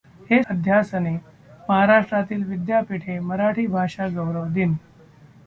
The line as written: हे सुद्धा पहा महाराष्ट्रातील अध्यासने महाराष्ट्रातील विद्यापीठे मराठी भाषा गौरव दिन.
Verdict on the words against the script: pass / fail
fail